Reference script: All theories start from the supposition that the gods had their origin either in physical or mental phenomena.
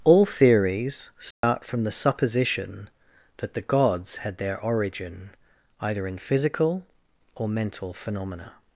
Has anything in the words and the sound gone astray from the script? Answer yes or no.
yes